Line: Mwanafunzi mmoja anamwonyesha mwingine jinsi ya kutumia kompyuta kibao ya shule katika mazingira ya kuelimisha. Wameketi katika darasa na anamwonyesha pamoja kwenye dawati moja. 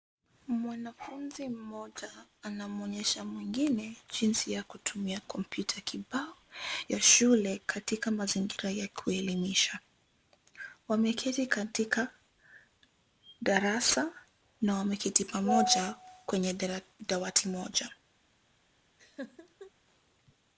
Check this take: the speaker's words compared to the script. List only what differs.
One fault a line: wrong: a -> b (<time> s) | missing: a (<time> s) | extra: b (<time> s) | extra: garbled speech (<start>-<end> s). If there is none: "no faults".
wrong: anamwonyesha -> wameketi (14.7 s)